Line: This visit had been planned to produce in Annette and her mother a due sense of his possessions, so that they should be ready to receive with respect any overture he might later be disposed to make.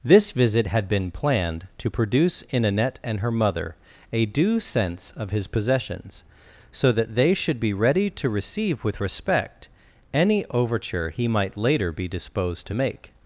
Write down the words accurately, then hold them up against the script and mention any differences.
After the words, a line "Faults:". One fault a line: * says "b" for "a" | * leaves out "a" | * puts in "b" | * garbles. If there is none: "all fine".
This visit had been planned to produce in Annette and her mother a due sense of his possessions, so that they should be ready to receive with respect any overture he might later be disposed to make.
Faults:
all fine